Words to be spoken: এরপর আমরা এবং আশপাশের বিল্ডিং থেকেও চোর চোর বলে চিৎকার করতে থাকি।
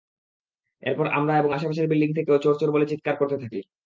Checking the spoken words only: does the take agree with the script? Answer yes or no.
yes